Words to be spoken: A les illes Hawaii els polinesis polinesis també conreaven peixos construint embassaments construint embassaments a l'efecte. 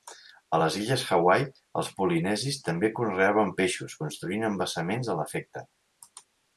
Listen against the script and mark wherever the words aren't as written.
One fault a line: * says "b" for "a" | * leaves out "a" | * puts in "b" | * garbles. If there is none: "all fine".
* leaves out "polinesis"
* leaves out "construint embassaments"